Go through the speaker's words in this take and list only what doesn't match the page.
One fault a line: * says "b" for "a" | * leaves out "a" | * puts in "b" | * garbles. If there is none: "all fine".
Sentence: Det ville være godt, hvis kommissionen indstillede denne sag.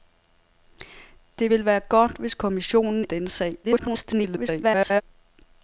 * leaves out "indstillede"
* garbles